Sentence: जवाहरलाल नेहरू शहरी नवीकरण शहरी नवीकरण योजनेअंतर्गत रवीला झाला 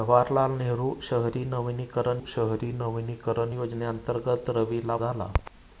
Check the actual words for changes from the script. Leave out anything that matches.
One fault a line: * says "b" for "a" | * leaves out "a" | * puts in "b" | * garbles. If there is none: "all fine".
all fine